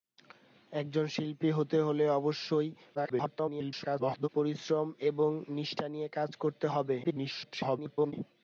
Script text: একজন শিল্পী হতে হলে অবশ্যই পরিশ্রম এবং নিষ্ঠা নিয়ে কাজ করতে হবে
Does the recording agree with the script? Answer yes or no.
no